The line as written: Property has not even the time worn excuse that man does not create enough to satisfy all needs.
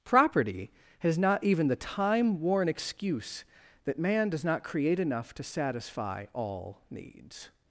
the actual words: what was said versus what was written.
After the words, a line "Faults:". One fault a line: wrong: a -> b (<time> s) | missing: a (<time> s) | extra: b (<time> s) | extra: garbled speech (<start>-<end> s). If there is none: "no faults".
Property has not even the time worn excuse that man does not create enough to satisfy all needs.
Faults:
no faults